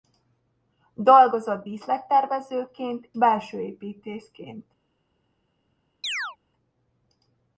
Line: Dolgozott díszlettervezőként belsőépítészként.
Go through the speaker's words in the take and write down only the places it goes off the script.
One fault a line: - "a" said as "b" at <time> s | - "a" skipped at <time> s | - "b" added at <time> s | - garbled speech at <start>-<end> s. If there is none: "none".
none